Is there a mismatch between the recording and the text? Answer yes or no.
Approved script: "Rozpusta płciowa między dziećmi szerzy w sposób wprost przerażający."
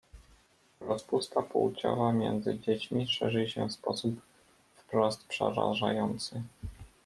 yes